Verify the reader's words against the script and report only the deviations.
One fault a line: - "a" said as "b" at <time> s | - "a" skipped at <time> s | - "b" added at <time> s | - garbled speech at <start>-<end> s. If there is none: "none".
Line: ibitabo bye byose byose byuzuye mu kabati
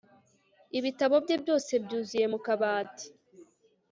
- "byose" skipped at 1.7 s